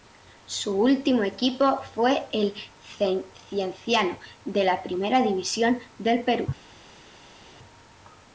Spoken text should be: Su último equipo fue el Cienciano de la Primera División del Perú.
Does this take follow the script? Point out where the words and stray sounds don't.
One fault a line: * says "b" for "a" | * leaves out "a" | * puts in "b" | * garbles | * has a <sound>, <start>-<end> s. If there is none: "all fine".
all fine